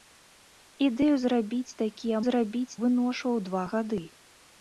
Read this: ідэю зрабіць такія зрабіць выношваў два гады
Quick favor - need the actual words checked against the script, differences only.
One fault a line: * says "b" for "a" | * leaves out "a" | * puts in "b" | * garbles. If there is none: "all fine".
all fine